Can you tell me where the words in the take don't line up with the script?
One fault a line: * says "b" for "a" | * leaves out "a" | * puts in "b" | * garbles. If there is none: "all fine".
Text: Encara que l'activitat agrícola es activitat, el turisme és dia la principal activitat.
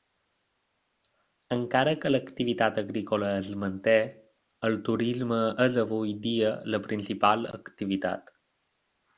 * says "manté" for "activitat"
* puts in "avui"